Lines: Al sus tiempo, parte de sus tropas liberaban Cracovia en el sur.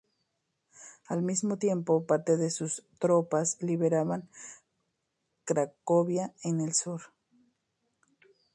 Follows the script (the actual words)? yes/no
no